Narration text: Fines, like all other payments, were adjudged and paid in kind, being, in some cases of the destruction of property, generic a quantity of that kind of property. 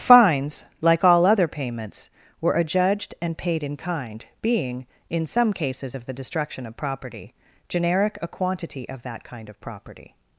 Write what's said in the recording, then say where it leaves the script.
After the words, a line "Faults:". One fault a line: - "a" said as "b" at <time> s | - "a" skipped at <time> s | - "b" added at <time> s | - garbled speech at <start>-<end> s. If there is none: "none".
Fines, like all other payments, were adjudged and paid in kind, being, in some cases of the destruction of property, generic a quantity of that kind of property.
Faults:
none